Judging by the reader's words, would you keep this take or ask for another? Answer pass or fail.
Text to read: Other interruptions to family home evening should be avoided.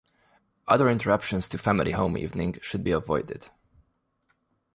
pass